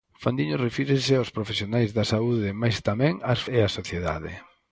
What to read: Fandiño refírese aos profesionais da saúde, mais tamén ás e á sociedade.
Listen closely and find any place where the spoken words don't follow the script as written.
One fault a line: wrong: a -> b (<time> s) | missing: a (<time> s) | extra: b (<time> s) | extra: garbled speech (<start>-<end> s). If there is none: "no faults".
no faults